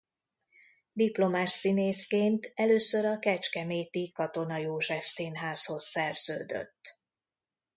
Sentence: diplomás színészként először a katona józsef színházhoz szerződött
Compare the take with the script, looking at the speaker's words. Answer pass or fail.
fail